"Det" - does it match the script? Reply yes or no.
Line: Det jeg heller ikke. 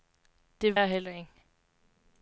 yes